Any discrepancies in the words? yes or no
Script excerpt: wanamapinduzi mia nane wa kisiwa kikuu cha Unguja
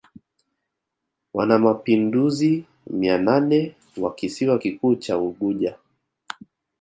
no